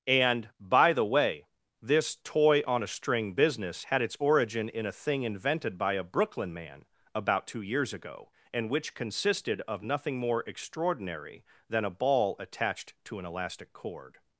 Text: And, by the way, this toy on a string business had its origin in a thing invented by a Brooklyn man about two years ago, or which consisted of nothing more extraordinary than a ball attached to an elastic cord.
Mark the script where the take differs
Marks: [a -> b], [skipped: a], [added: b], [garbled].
And, by the way, this toy on a string business had its origin in a thing invented by a Brooklyn man about two years ago, [or -> and] which consisted of nothing more extraordinary than a ball attached to an elastic cord.